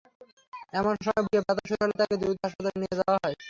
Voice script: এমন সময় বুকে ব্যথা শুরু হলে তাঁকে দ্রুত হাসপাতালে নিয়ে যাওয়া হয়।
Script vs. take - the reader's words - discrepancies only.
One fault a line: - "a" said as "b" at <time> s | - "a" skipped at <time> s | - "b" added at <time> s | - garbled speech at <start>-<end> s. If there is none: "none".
none